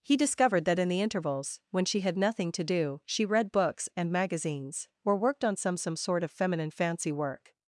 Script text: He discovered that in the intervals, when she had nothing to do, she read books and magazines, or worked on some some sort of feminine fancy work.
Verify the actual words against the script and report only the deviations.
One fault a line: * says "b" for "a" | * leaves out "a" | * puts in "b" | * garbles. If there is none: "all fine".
all fine